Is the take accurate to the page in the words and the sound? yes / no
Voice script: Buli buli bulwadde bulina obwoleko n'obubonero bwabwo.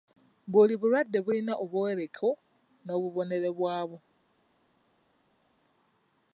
no